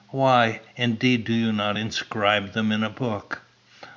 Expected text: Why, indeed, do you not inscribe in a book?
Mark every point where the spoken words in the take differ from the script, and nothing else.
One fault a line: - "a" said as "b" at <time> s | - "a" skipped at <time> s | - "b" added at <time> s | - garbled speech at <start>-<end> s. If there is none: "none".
- "them" added at 2.5 s